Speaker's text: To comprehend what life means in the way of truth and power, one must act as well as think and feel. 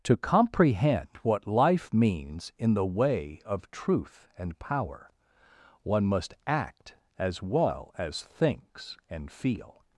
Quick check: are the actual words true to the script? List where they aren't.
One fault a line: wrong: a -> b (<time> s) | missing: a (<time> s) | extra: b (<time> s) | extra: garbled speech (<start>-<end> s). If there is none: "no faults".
wrong: think -> thinks (8.2 s)